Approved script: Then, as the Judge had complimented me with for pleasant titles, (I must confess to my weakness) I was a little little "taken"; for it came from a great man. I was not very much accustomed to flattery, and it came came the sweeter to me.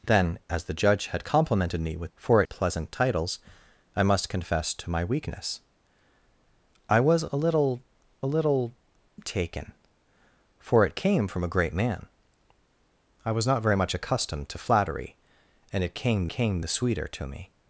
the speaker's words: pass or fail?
pass